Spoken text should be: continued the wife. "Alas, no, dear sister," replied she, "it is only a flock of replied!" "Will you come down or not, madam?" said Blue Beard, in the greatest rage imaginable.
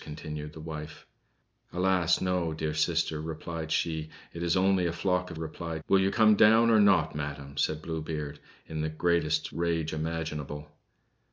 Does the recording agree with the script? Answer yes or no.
yes